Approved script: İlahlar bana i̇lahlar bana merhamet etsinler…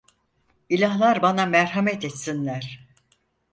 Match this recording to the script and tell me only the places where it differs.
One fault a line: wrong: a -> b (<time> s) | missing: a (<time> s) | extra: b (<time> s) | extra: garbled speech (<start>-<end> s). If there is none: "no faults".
missing: i̇lahlar bana (1.5 s)